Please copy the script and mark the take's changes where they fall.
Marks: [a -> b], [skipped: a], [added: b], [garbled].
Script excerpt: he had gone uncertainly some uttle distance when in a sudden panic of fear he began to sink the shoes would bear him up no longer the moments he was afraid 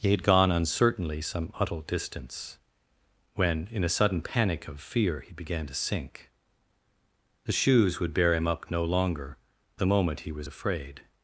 he had gone uncertainly some uttle distance when in a sudden panic of fear he began to sink the shoes would bear him up no longer the [moments -> moment] he was afraid